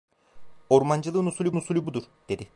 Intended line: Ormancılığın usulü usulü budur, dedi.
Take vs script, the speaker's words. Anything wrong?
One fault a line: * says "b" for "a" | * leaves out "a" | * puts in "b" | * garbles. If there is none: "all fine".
all fine